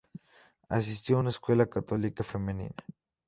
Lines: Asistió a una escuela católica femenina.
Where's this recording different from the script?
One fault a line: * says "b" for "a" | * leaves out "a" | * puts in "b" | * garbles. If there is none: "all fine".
all fine